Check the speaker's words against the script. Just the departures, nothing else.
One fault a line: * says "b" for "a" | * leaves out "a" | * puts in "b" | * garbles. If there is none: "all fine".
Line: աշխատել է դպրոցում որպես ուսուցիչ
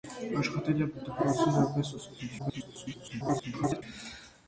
* garbles